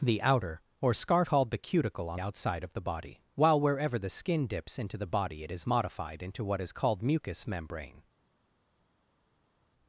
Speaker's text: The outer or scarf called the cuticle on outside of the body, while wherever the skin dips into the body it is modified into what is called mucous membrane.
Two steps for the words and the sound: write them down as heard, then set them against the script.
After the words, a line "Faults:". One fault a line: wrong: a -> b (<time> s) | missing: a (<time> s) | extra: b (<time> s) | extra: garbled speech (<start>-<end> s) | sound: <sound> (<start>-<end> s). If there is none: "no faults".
The outer or scarf called the cuticle on outside of the body, while wherever the skin dips into the body it is modified into what is called mucous membrane.
Faults:
no faults